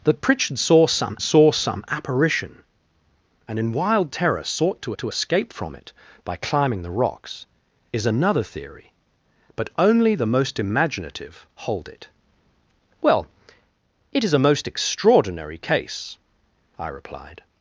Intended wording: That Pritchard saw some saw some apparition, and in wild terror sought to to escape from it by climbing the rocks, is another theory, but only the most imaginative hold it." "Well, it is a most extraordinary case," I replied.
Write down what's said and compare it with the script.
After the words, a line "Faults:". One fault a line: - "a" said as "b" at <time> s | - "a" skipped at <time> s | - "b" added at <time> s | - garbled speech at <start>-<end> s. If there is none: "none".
That Pritchard saw some saw some apparition, and in wild terror sought to to escape from it by climbing the rocks, is another theory, but only the most imaginative hold it." "Well, it is a most extraordinary case," I replied.
Faults:
none